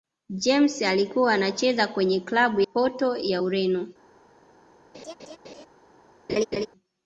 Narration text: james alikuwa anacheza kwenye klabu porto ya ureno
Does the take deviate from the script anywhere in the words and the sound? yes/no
yes